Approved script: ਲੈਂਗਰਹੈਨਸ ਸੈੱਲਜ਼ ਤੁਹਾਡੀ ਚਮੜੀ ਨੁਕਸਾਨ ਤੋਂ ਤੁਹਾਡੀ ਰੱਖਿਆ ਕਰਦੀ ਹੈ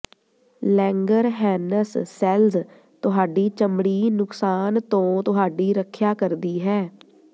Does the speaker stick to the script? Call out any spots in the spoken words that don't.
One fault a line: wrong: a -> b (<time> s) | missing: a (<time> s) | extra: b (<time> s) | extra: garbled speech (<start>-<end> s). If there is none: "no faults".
no faults